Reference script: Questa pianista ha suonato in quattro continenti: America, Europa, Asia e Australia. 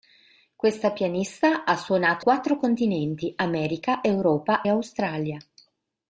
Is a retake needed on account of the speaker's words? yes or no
yes